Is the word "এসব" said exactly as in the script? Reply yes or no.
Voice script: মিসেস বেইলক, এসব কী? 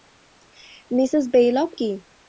no